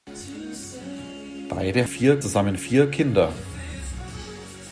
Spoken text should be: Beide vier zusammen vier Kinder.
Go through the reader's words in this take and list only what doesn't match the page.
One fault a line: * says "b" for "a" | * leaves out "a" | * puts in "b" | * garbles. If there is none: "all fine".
all fine